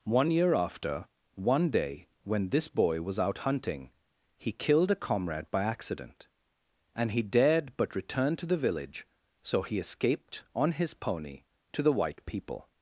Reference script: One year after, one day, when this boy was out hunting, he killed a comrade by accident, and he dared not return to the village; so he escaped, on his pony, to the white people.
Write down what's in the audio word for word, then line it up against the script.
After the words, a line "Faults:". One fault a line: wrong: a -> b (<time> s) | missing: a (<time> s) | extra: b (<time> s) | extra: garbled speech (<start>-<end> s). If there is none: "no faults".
One year after, one day, when this boy was out hunting, he killed a comrade by accident, and he dared but return to the village; so he escaped, on his pony, to the white people.
Faults:
wrong: not -> but (7.8 s)